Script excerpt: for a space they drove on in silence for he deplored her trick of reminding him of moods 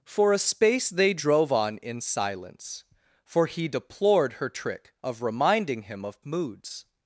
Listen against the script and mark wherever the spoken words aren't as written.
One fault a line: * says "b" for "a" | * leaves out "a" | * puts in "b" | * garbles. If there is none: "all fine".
all fine